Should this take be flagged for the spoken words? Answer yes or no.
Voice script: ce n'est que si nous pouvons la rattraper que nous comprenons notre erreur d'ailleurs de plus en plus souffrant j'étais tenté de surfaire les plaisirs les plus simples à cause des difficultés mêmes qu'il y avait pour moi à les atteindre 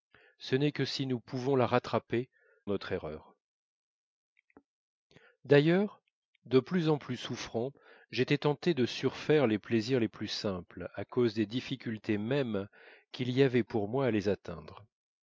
yes